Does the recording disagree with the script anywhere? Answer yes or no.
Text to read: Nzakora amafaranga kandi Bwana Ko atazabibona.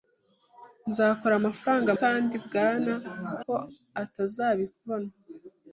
no